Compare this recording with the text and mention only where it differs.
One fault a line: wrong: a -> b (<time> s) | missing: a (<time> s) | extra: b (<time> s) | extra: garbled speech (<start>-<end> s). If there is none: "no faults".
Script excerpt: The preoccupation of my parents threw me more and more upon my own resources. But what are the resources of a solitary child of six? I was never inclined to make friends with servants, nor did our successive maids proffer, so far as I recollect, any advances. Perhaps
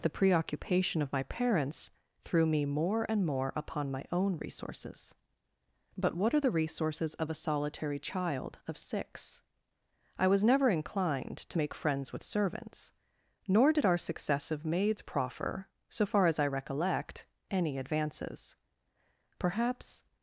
no faults